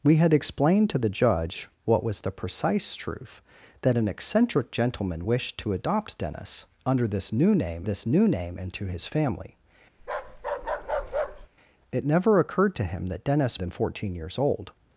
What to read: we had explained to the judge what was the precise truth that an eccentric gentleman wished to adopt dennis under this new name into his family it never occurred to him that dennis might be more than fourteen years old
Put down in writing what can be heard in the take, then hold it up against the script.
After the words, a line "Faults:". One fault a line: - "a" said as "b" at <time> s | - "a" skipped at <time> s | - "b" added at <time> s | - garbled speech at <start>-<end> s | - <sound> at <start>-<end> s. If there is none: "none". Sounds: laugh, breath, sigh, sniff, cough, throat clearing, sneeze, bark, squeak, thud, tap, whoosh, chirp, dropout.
we had explained to the judge what was the precise truth that an eccentric gentleman wished to adopt dennis under this new name this new name into his family it never occurred to him that dennis than fourteen years old
Faults:
- "this new name" added at 7.8 s
- bark at 10.0-11.5 s
- "might be more" skipped at 13.6 s